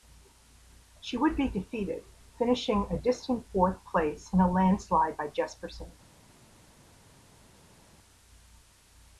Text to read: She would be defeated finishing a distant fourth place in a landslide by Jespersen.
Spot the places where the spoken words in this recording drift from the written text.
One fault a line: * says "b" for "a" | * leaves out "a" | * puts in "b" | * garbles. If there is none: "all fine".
all fine